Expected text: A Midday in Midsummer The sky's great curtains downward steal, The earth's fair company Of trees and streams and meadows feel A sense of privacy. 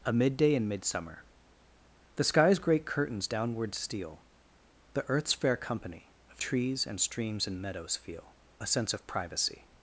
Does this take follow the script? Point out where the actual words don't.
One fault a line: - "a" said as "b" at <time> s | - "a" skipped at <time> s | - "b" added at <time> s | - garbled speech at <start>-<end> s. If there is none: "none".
none